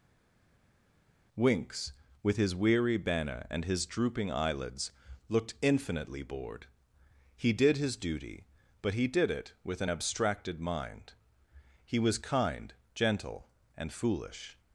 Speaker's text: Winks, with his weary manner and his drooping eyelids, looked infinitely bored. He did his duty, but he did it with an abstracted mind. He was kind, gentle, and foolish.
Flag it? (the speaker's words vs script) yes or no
yes